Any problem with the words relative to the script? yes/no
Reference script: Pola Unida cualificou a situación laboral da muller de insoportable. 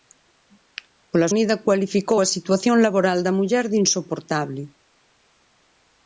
no